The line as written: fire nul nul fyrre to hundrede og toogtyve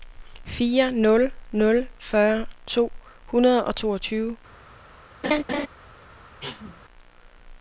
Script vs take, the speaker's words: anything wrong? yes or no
no